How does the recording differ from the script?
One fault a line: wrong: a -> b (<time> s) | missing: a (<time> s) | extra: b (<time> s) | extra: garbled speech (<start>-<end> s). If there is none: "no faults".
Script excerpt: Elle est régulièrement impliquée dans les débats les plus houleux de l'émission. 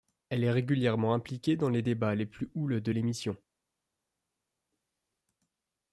no faults